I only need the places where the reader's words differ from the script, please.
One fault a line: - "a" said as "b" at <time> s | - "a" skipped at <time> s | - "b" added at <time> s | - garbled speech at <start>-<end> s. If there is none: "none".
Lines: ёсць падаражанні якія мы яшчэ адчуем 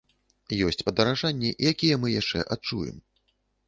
none